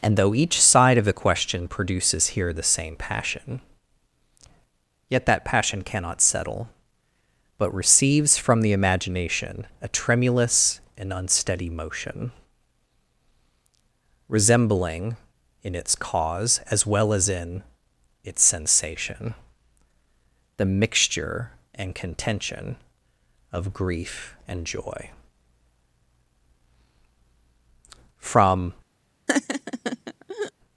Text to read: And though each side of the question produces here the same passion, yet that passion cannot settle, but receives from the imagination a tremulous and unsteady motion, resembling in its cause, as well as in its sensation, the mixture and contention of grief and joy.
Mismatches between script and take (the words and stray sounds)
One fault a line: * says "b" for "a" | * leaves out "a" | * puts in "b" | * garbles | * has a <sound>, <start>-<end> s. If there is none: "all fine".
* puts in "From"
* has a laugh, 29.3-30.5 s